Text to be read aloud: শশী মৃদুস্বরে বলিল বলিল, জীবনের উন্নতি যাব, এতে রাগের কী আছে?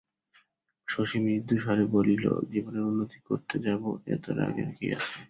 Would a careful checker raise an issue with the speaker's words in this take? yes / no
yes